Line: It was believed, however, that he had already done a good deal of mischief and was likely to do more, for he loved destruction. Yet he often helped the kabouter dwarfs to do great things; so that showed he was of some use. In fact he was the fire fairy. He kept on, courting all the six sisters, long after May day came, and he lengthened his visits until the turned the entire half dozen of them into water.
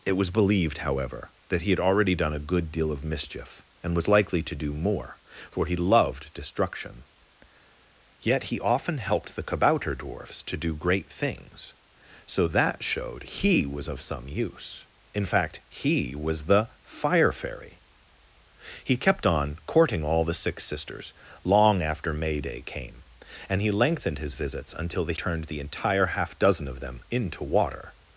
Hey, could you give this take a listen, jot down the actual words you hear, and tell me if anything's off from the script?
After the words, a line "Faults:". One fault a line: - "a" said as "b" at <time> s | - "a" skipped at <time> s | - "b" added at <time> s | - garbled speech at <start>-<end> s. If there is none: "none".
It was believed, however, that he had already done a good deal of mischief and was likely to do more, for he loved destruction. Yet he often helped the kabouter dwarfs to do great things; so that showed he was of some use. In fact he was the fire fairy. He kept on, courting all the six sisters, long after May day came, and he lengthened his visits until the turned the entire half dozen of them into water.
Faults:
none